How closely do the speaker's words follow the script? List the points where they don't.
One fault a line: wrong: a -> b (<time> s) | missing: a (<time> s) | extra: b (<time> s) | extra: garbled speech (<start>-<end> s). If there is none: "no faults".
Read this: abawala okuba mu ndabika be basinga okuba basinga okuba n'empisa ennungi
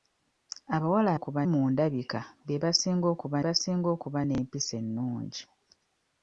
no faults